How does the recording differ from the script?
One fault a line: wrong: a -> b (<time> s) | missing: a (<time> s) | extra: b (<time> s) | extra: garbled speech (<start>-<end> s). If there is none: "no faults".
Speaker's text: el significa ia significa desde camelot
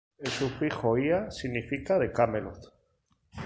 wrong: significa -> sufijo (0.3 s)
wrong: desde -> de (2.0 s)